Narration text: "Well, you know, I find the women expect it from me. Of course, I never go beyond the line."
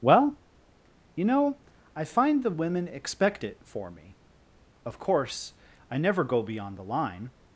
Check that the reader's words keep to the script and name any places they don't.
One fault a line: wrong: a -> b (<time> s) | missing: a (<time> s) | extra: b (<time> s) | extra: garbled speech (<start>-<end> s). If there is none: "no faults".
wrong: from -> for (3.6 s)